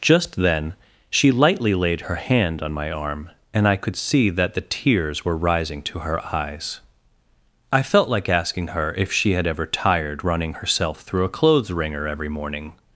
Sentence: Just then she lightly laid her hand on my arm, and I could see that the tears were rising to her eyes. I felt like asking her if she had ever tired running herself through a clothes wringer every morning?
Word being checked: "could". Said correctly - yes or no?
yes